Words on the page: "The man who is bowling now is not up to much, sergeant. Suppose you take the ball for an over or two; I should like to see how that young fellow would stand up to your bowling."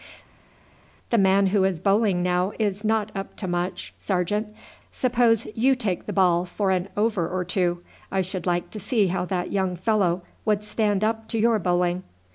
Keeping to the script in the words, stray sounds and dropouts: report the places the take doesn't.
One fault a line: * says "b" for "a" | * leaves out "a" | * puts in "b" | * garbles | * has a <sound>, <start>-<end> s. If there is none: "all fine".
all fine